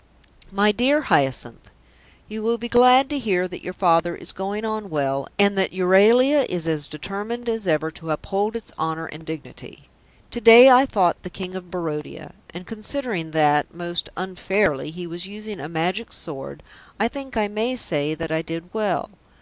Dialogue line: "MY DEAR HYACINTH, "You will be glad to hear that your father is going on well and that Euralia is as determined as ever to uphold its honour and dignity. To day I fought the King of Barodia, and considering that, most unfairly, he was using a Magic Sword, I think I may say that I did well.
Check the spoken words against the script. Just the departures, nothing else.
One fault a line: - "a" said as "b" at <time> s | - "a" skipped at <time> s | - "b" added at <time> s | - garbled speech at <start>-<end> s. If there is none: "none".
none